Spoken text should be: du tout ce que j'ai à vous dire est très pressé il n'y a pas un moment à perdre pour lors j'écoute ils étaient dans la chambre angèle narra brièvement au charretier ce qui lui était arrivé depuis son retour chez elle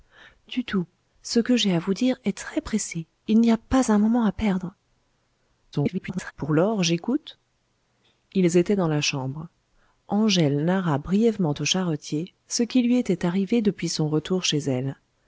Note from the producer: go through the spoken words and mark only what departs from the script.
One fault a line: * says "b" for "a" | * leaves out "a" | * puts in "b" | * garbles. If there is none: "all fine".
* garbles